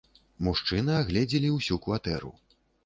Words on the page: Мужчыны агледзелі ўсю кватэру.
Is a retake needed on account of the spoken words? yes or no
no